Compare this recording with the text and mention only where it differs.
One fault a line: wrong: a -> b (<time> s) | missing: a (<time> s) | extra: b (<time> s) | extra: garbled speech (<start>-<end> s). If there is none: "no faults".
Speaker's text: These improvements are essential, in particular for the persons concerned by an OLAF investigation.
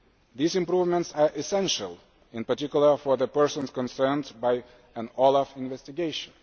no faults